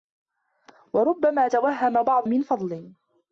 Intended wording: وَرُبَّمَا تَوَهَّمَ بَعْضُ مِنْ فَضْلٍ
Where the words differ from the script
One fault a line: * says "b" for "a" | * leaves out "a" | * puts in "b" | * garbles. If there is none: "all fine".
all fine